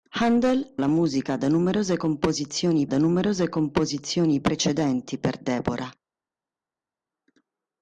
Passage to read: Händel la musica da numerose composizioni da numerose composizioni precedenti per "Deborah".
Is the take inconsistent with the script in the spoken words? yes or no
no